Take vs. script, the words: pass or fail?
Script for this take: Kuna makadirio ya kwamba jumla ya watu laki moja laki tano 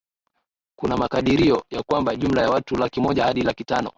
fail